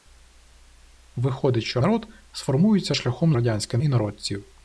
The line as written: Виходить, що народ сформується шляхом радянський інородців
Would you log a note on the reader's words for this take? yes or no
no